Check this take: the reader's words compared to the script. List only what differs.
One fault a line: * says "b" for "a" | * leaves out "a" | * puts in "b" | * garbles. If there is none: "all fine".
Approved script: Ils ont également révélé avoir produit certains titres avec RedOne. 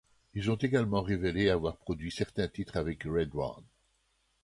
all fine